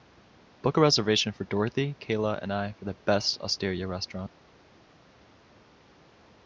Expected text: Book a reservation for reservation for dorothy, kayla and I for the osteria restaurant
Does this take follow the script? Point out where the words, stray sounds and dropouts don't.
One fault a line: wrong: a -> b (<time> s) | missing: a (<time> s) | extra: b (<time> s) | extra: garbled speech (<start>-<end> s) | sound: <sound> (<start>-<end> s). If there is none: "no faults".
missing: reservation for (1.4 s)
extra: best (2.9 s)